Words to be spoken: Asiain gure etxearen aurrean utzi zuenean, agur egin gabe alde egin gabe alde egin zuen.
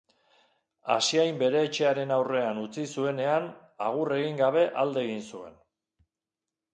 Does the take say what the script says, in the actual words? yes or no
no